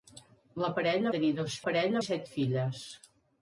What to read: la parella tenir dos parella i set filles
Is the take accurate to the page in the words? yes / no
yes